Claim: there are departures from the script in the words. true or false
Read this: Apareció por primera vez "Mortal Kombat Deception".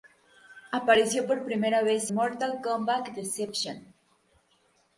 false